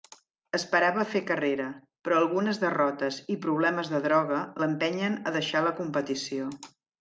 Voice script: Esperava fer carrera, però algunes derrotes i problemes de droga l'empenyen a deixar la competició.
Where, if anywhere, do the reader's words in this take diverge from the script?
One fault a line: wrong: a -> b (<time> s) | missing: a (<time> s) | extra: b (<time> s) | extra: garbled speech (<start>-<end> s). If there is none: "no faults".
no faults